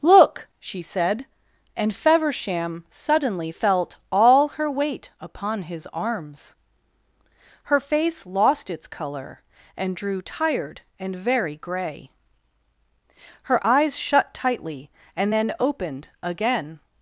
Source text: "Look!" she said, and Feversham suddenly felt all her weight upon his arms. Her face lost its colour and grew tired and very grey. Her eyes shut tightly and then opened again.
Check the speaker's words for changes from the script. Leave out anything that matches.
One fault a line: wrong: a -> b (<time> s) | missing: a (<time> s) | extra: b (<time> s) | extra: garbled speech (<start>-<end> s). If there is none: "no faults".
wrong: grew -> drew (10.0 s)